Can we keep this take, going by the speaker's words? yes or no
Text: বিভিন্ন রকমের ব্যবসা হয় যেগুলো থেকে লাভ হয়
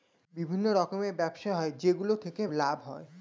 yes